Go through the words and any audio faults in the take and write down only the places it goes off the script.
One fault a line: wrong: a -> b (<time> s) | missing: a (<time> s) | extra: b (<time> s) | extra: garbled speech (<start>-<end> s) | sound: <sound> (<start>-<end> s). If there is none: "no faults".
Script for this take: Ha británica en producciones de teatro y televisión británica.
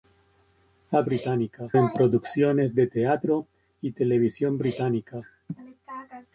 no faults